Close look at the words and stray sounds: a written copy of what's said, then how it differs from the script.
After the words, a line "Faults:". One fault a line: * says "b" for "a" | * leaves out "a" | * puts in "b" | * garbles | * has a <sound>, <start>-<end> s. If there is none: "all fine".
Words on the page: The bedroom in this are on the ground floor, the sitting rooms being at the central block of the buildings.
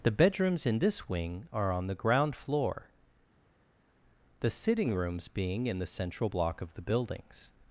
The bedrooms in this wing are on the ground floor, the sitting rooms being in the central block of the buildings.
Faults:
* says "bedrooms" for "bedroom"
* puts in "wing"
* says "in" for "at"